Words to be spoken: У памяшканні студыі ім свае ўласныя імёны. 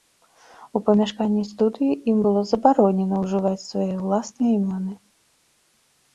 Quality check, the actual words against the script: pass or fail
fail